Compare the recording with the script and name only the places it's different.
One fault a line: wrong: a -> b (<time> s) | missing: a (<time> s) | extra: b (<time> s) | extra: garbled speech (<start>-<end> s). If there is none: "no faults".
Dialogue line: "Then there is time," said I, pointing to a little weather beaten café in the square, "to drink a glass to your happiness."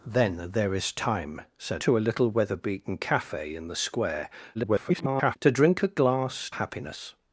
missing: I pointing (1.9 s)
extra: garbled speech (4.5-5.4 s)
missing: to your (6.5 s)